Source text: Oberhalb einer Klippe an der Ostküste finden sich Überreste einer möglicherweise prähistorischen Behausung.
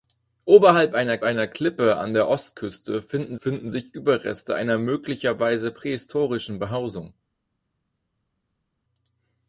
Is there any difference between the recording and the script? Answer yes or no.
yes